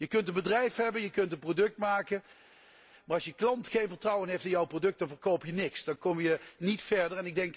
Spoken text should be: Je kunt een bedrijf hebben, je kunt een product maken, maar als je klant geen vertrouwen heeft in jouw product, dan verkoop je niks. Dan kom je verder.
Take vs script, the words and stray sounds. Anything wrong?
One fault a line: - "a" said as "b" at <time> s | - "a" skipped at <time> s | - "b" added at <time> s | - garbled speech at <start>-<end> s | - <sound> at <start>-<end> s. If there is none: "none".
- "niet" added at 6.6 s